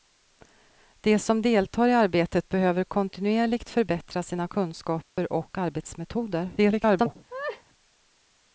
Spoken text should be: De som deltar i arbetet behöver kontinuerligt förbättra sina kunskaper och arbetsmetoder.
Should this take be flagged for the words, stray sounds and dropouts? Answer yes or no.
yes